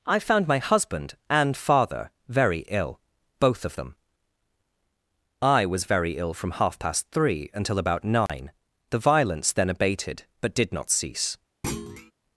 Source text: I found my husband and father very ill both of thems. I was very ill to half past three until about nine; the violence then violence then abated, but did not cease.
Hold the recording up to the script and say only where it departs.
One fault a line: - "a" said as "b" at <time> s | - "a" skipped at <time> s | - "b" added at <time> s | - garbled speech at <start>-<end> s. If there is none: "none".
- "thems" said as "them" at 3.8 s
- "to" said as "from" at 6.3 s
- "violence then" skipped at 9.7 s